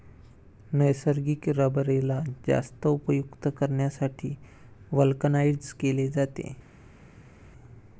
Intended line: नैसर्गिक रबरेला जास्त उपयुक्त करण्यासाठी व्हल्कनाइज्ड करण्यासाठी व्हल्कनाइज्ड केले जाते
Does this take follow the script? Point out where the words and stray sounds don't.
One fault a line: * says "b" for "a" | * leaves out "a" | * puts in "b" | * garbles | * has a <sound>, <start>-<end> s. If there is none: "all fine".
* leaves out "करण्यासाठी व्हल्कनाइज्ड"